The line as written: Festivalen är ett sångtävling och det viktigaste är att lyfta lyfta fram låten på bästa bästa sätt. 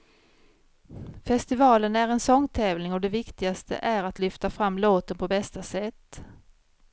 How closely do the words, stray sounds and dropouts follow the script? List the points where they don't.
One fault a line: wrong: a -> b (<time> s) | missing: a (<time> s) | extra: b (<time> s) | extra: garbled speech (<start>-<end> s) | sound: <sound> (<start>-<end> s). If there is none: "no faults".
wrong: ett -> en (2.1 s)
missing: lyfta (4.5 s)
missing: bästa (5.6 s)